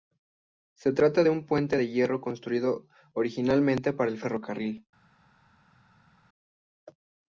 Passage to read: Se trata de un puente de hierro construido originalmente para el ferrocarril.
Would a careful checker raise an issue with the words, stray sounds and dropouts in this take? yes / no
no